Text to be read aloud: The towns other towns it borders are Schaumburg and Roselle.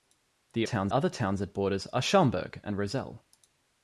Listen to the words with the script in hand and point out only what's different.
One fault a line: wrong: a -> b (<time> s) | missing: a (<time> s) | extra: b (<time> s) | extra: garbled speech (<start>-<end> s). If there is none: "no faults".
no faults